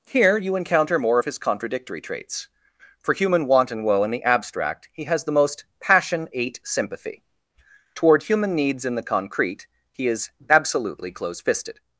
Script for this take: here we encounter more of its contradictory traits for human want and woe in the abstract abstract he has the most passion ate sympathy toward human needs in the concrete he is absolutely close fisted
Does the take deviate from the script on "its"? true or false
true